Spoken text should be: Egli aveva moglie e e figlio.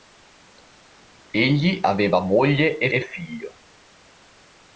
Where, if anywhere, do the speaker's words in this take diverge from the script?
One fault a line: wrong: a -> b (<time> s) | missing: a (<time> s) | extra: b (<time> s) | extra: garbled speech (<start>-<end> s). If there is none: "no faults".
no faults